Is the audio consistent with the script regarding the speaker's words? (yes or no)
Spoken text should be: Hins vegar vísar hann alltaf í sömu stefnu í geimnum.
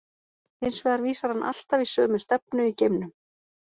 yes